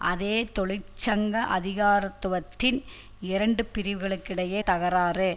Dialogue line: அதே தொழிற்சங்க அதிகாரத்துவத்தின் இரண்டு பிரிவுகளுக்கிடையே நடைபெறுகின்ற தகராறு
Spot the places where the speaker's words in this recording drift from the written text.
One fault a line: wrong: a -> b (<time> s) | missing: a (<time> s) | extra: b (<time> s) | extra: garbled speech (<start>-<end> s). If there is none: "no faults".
missing: நடைபெறுகின்ற (4.6 s)